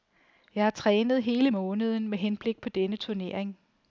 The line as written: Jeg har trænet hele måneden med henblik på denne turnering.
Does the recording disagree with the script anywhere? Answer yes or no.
no